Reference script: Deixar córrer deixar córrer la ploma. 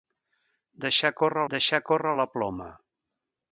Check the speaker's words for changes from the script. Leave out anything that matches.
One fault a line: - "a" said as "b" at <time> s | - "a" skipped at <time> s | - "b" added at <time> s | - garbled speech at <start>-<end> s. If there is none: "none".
none